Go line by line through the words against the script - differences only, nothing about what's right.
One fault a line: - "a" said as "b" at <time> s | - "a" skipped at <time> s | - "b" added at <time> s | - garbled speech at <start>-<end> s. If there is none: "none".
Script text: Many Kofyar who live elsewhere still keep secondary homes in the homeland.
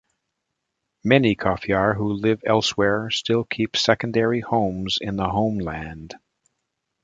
none